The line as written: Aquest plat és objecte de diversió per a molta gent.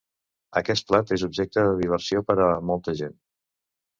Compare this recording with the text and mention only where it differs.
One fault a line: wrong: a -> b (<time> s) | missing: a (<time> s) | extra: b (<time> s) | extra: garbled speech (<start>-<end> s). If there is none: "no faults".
no faults